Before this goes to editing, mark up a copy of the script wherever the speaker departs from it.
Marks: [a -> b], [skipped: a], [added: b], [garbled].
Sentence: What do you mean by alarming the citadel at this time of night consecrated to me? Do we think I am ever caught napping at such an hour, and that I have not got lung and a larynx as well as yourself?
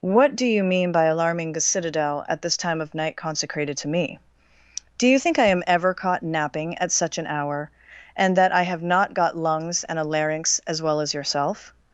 What do you mean by alarming the citadel at this time of night consecrated to me? Do [we -> you] think I am ever caught napping at such an hour, and that I have not got [lung -> lungs] and a larynx as well as yourself?